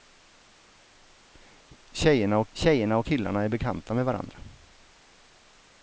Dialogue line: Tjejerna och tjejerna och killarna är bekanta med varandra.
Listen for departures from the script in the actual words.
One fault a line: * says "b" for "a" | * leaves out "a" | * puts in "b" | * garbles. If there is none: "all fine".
all fine